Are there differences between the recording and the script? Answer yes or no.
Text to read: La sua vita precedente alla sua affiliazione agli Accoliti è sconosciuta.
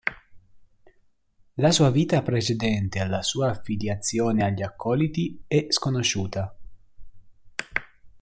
no